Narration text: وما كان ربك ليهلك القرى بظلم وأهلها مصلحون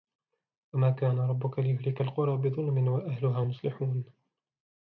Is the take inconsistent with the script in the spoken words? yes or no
no